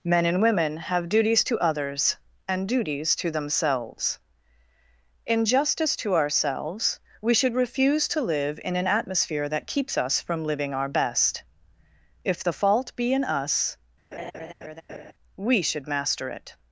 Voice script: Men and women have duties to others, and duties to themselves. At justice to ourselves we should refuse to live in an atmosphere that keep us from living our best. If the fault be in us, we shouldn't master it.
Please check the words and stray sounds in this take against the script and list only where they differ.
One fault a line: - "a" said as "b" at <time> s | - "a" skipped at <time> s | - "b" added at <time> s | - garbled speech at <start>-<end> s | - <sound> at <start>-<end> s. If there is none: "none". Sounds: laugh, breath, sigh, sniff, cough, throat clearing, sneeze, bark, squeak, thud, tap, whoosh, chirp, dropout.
- "At" said as "In" at 5.3 s
- "keep" said as "keeps" at 9.7 s
- laugh at 14.1-15.1 s
- "shouldn't" said as "should" at 15.6 s